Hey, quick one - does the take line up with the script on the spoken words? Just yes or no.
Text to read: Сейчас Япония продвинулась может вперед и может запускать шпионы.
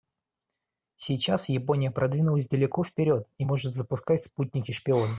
no